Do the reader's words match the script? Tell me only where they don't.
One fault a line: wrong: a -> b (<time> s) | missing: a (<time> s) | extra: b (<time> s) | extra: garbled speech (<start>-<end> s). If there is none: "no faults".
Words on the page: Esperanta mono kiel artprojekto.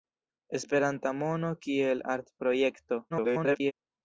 extra: garbled speech (3.1-3.7 s)